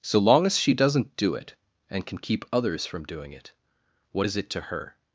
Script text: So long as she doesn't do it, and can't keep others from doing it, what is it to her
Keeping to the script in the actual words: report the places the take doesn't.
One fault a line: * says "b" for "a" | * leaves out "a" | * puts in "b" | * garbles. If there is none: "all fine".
* says "can" for "can't"